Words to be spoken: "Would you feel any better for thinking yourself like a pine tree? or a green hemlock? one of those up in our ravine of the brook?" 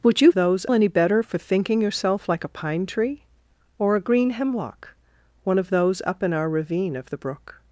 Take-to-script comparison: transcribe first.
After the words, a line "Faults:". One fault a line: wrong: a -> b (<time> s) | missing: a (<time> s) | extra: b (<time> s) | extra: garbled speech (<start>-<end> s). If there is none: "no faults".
"Would you those any better for thinking yourself like a pine tree? or a green hemlock? one of those up in our ravine of the brook?"
Faults:
wrong: feel -> those (0.3 s)